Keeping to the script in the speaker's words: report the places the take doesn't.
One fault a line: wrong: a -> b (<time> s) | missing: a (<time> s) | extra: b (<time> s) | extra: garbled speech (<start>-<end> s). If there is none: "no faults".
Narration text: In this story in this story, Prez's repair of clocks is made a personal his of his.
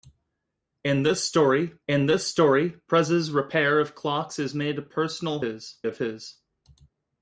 no faults